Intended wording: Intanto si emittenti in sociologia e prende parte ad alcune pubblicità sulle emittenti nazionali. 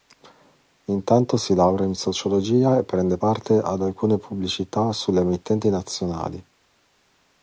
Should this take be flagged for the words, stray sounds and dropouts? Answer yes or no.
yes